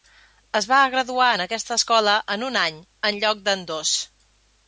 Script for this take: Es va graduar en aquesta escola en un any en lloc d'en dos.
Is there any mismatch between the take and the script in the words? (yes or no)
no